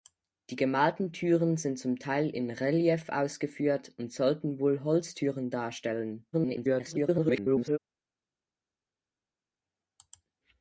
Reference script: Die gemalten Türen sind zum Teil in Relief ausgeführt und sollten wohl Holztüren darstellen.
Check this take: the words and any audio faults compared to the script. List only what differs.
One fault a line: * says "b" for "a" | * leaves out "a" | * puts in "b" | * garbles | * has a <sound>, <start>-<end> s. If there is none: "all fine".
* garbles